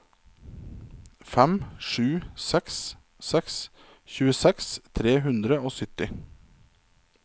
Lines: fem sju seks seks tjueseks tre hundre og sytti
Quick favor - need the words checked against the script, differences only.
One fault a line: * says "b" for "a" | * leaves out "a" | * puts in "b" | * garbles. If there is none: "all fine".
all fine